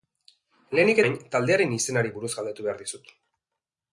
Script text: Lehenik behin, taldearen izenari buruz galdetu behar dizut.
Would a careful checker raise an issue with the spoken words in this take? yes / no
no